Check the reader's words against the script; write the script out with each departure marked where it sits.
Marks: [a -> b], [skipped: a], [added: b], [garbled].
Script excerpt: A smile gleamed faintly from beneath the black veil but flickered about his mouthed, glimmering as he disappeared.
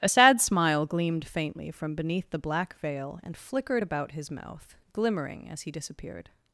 A [added: sad] smile gleamed faintly from beneath the black veil [but -> and] flickered about his [mouthed, -> mouth] glimmering as he disappeared.